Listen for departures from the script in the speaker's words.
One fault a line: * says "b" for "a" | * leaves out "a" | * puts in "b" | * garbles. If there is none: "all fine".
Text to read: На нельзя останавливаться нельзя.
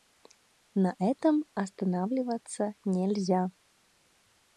* says "этом" for "нельзя"